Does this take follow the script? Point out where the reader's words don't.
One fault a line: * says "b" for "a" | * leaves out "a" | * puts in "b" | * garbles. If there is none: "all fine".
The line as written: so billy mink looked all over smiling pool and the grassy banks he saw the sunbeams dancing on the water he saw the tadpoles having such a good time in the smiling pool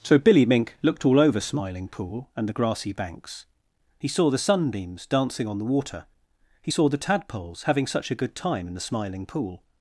all fine